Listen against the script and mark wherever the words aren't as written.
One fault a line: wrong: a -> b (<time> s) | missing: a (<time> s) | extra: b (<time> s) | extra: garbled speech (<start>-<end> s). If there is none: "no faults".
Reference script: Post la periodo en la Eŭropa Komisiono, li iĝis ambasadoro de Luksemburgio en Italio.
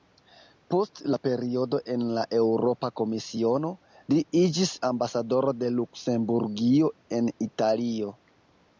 no faults